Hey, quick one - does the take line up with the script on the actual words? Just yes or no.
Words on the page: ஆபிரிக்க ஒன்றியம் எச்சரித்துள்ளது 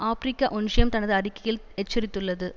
no